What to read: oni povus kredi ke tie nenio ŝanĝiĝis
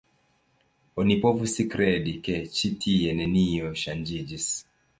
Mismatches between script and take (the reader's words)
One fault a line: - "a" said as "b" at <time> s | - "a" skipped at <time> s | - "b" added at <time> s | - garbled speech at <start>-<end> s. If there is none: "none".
- "ĉi" added at 2.6 s